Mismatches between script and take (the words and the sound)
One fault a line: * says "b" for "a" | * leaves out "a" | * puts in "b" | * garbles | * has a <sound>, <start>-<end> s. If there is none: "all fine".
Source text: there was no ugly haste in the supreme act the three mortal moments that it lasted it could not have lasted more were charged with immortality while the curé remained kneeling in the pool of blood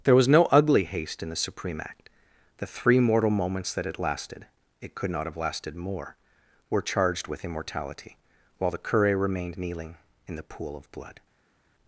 all fine